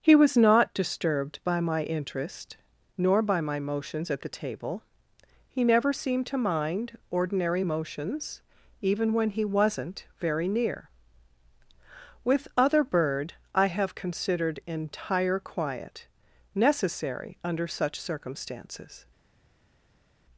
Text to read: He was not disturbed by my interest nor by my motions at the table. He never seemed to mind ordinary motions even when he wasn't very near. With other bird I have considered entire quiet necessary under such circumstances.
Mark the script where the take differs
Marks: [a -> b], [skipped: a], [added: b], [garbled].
He was not disturbed by my interest nor by my motions at the table. He never seemed to mind ordinary motions even when he wasn't very near. With other bird I have considered entire quiet necessary under such circumstances.